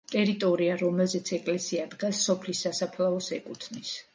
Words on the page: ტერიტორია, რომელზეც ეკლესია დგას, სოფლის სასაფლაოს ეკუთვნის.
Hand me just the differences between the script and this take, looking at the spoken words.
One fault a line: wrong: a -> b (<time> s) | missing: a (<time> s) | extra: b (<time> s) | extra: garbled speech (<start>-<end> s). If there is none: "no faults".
no faults